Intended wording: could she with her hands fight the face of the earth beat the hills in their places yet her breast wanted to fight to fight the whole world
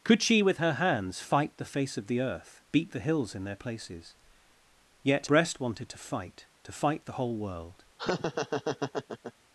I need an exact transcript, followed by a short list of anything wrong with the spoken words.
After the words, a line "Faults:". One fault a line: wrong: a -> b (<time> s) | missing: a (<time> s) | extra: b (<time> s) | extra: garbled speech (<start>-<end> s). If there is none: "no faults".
could she with her hands fight the face of the earth beat the hills in their places yet breast wanted to fight to fight the whole world
Faults:
missing: her (5.3 s)